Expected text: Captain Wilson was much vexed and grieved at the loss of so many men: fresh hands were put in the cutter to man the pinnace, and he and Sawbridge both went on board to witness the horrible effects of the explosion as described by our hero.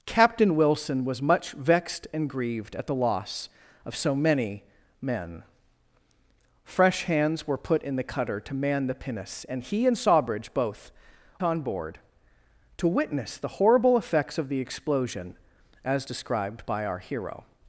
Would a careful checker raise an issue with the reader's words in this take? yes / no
yes